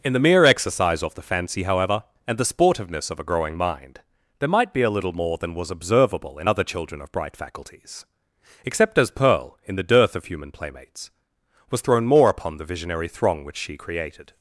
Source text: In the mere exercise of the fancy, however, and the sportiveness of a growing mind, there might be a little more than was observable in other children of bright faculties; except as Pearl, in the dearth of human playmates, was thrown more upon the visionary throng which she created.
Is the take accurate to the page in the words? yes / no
yes